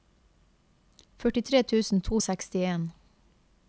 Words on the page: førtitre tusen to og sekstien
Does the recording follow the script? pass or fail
pass